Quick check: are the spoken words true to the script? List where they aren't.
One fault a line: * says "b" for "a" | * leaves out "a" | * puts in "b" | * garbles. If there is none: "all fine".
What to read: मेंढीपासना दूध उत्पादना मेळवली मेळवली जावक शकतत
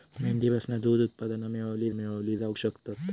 all fine